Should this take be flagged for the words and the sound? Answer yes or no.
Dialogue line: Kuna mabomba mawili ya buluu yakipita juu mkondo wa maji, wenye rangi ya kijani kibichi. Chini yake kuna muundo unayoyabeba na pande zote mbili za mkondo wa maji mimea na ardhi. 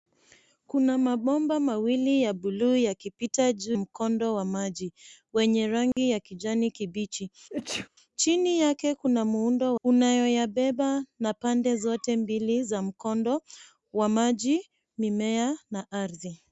yes